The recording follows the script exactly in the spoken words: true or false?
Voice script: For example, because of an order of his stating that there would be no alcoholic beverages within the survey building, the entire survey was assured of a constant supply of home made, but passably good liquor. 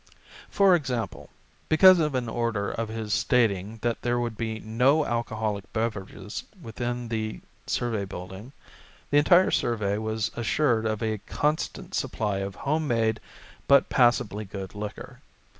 true